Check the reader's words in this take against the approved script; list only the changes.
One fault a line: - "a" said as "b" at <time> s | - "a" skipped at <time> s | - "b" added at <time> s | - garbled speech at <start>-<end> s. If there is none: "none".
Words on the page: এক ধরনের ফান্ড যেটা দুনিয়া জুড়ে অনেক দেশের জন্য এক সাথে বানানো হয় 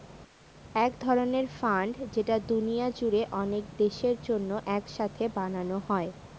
none